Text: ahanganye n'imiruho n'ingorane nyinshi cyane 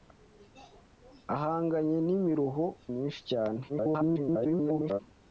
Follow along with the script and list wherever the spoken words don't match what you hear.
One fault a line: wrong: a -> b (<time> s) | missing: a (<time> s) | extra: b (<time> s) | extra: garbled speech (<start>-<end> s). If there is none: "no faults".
missing: n'ingorane (2.6 s)
extra: garbled speech (3.7-5.0 s)